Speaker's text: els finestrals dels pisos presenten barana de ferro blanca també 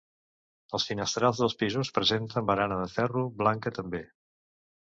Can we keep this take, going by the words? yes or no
yes